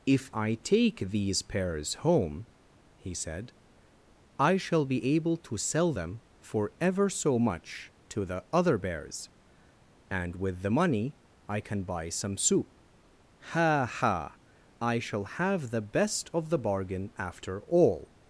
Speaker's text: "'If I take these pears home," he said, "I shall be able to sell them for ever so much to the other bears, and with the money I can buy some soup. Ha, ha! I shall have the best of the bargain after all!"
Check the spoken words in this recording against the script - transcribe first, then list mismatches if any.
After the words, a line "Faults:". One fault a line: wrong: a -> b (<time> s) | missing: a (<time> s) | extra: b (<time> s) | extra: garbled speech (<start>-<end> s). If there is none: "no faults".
"'If I take these pears home," he said, "I shall be able to sell them for ever so much to the other bears, and with the money I can buy some soup. Ha, ha! I shall have the best of the bargain after all!"
Faults:
no faults